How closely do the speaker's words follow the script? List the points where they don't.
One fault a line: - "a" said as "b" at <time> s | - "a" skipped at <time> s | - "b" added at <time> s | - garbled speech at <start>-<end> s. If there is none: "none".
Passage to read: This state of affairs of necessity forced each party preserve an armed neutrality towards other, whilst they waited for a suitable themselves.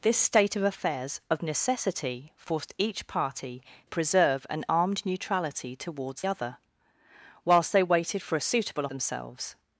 none